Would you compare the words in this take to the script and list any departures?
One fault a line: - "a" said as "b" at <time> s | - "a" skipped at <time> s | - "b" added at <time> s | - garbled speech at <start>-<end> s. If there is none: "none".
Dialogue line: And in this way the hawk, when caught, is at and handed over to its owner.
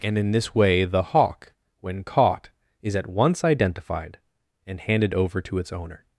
- "once identified" added at 3.1 s